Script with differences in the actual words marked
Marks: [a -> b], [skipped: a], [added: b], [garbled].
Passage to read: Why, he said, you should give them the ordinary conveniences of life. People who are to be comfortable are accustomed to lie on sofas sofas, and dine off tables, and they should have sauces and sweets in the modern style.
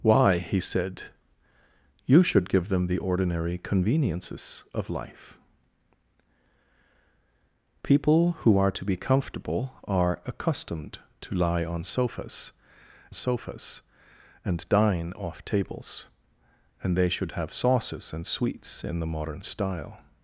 Why, he said, you should give them the ordinary conveniences of life. People who are to be comfortable are accustomed to lie on sofas sofas, and dine off tables, and they should have sauces and sweets in the modern style.